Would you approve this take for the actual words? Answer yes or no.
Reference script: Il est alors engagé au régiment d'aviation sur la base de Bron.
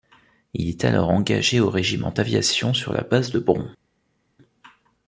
yes